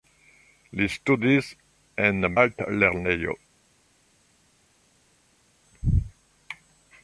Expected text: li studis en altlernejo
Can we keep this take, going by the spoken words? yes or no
yes